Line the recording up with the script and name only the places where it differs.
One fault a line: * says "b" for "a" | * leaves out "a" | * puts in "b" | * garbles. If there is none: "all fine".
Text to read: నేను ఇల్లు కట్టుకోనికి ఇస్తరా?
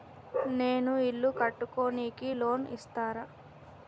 * puts in "లోన్"